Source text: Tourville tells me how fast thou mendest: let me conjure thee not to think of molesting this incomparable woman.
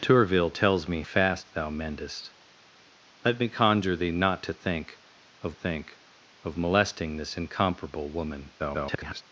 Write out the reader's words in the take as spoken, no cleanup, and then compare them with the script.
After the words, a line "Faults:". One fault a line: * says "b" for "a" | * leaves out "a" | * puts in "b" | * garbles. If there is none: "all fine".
Tourville tells me fast thou mendest: let me conjure thee not to think of think of molesting this incomparable woman. [garbled]
Faults:
* leaves out "how"
* puts in "think of"
* garbles